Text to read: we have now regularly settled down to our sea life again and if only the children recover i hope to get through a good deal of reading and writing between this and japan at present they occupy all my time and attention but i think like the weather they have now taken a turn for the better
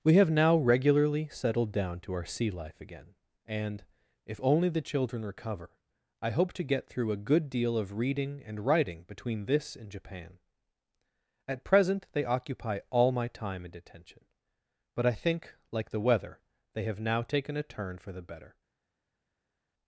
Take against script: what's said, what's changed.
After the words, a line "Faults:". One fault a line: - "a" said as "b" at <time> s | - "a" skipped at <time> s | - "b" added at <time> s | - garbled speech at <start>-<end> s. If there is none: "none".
we have now regularly settled down to our sea life again and if only the children recover i hope to get through a good deal of reading and writing between this and japan at present they occupy all my time and attention but i think like the weather they have now taken a turn for the better
Faults:
none